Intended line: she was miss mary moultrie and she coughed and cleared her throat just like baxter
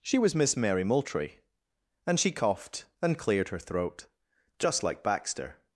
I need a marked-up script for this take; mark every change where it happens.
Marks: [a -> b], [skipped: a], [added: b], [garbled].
she was miss mary moultrie and she coughed and cleared her throat just like baxter